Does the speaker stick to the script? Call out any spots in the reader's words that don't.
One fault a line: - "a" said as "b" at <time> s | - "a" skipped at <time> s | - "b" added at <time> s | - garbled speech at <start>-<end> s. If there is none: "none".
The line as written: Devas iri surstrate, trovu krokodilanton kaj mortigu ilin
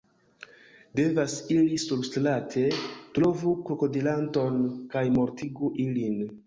none